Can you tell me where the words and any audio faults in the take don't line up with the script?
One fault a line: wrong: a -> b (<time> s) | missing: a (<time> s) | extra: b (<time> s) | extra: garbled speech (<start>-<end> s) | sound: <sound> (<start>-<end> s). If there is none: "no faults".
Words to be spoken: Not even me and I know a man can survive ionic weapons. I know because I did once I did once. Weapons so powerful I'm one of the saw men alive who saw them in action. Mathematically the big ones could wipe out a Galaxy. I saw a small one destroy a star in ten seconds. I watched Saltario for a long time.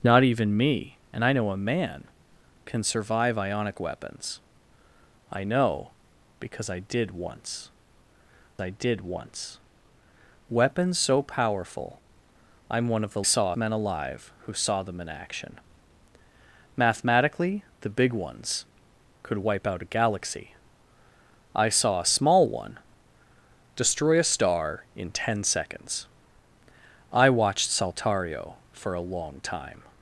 no faults